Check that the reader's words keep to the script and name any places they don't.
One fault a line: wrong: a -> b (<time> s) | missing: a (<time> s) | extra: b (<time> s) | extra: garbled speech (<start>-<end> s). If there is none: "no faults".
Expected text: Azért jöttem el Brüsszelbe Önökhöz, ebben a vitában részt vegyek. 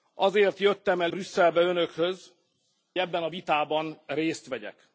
no faults